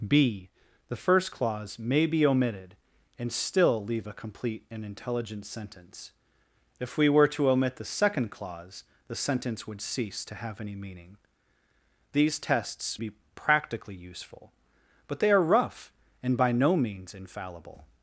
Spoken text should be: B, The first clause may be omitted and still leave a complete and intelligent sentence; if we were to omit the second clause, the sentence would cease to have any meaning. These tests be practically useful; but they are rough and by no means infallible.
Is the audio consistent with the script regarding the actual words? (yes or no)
yes